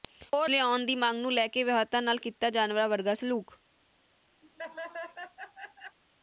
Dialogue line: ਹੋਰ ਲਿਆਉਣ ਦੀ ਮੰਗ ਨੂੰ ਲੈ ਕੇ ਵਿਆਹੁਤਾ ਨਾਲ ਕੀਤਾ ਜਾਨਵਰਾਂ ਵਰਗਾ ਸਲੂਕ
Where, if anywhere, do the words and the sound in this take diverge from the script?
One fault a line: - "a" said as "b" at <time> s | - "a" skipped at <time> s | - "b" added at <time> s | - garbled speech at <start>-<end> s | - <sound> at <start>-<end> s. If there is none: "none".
- laugh at 4.4-6.0 s